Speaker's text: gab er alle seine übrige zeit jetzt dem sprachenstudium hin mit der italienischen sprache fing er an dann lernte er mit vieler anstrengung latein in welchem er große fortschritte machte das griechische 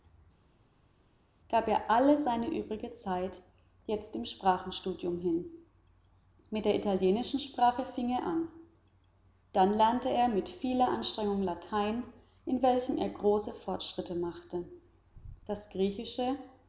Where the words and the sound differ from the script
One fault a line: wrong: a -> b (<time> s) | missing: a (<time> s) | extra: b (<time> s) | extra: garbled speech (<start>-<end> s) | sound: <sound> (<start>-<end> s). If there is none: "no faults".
no faults